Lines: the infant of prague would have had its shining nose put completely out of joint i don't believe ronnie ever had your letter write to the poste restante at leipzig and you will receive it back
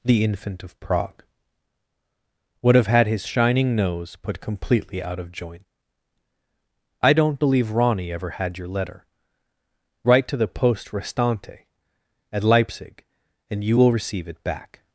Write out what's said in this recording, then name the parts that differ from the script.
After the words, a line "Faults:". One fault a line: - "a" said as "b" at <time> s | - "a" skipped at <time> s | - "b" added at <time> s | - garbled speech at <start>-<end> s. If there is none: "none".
the infant of prague would have had his shining nose put completely out of joint i don't believe ronnie ever had your letter write to the poste restante at leipzig and you will receive it back
Faults:
- "its" said as "his" at 3.1 s